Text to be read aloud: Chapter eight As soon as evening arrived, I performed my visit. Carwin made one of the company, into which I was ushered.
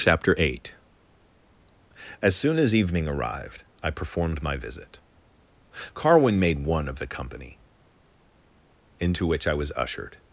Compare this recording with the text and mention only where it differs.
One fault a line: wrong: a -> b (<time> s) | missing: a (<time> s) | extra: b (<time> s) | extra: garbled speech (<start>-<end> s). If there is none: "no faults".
no faults